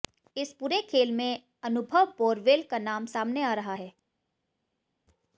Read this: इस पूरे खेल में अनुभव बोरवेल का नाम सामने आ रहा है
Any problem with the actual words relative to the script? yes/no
no